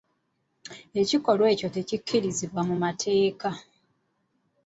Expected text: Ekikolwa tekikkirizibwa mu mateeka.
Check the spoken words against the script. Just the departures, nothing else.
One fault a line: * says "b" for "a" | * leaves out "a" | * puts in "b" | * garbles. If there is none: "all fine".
* puts in "ekyo"